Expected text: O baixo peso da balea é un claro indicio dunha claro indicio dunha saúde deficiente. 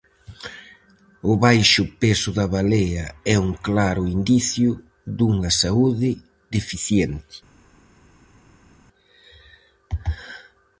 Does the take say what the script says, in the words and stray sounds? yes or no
no